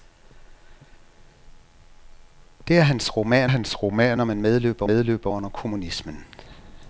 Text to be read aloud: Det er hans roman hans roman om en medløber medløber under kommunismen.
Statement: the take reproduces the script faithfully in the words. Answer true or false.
true